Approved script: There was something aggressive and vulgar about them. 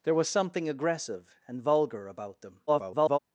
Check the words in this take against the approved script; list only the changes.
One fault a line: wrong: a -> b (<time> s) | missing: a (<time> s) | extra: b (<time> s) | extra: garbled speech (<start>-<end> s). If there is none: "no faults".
extra: garbled speech (2.7-3.2 s)